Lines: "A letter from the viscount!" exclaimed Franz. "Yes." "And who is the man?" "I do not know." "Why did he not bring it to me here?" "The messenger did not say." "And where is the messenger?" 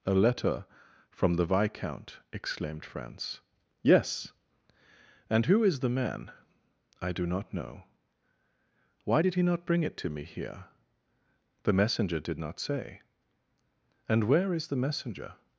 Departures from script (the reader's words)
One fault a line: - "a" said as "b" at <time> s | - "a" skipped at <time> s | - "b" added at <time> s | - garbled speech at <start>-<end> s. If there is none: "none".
none